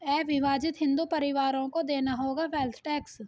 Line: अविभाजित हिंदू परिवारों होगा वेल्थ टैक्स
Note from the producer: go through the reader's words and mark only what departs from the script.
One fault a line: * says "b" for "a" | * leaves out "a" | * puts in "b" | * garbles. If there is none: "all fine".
* puts in "को देना"